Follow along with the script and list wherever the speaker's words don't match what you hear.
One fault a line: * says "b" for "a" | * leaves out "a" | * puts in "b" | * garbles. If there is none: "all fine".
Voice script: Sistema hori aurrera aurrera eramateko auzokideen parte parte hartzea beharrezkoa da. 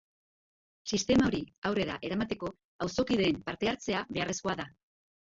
* leaves out "aurrera"
* leaves out "parte"